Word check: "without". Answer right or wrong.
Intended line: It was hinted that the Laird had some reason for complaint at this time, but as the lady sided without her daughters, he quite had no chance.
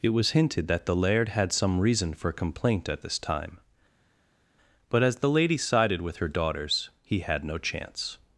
wrong